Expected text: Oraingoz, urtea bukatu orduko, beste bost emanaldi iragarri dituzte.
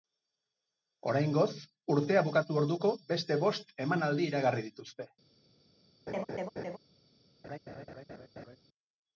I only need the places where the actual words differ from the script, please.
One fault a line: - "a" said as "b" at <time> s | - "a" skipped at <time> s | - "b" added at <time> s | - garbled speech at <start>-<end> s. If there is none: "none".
none